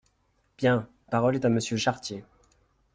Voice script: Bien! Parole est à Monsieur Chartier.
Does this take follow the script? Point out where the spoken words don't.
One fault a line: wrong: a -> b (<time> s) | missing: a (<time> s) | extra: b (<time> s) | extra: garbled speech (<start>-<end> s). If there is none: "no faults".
no faults